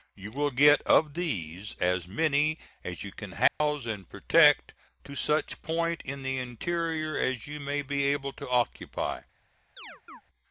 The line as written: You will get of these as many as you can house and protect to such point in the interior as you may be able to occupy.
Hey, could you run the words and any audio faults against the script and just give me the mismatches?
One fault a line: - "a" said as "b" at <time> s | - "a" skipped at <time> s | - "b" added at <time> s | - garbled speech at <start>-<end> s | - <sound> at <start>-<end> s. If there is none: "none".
- dropout at 3.5-3.6 s
- chirp at 9.8-10.2 s